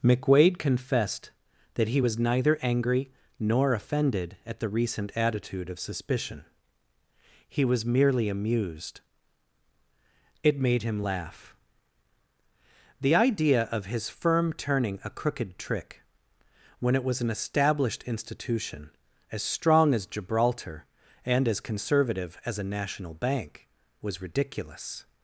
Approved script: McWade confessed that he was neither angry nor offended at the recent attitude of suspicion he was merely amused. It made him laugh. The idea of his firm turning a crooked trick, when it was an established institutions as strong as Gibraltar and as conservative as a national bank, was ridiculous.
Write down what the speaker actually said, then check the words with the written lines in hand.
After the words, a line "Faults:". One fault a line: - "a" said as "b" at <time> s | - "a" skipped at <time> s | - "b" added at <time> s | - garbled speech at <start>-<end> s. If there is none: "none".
McWade confessed that he was neither angry nor offended at the recent attitude of suspicion he was merely amused. It made him laugh. The idea of his firm turning a crooked trick, when it was an established institution as strong as Gibraltar and as conservative as a national bank, was ridiculous.
Faults:
- "institutions" said as "institution" at 18.1 s